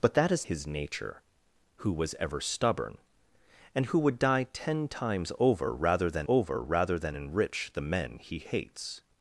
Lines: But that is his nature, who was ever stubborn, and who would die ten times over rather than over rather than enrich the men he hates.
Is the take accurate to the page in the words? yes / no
yes